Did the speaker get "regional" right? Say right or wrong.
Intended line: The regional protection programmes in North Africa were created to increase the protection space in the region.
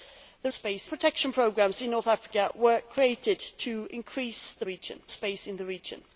wrong